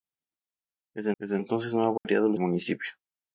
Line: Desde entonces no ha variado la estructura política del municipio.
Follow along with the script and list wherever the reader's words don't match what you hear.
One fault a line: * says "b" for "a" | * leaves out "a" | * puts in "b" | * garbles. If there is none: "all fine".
* puts in "desde"
* leaves out "estructura política del"